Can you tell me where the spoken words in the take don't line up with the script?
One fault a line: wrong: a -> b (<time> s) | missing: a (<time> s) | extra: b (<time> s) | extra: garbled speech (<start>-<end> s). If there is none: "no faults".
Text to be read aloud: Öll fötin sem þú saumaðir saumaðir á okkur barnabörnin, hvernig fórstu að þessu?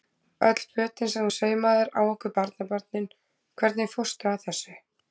missing: saumaðir (1.9 s)